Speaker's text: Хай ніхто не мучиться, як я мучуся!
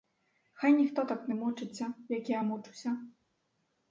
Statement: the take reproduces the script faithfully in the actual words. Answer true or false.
false